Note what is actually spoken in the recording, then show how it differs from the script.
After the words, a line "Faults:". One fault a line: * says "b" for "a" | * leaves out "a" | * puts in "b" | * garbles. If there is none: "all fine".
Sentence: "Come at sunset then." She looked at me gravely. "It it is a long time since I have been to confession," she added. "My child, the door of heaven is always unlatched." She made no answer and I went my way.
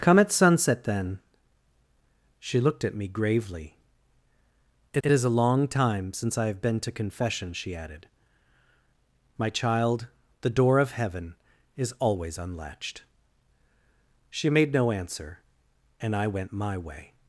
"Come at sunset then." She looked at me gravely. "It it is a long time since I have been to confession," she added. "My child, the door of heaven is always unlatched." She made no answer and I went my way.
Faults:
all fine